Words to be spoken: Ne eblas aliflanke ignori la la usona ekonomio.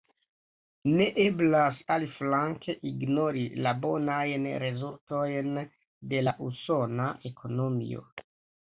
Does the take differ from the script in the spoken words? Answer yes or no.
yes